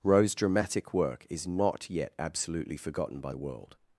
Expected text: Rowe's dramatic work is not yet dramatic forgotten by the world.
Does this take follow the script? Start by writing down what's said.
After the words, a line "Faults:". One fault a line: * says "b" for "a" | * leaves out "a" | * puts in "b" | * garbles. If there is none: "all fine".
Rowe's dramatic work is not yet absolutely forgotten by the world.
Faults:
* says "absolutely" for "dramatic"